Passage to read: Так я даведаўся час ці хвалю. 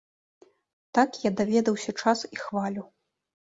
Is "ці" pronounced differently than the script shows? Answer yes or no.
yes